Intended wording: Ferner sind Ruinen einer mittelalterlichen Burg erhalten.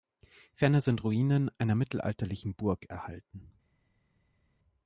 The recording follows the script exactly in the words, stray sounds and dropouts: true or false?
true